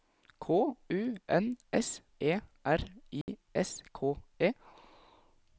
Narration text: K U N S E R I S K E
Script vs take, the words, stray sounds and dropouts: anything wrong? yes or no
yes